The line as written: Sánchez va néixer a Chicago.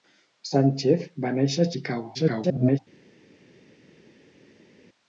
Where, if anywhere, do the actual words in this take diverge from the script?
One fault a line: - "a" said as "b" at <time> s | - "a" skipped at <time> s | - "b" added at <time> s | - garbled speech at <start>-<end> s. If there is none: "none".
- garbled speech at 2.1-2.8 s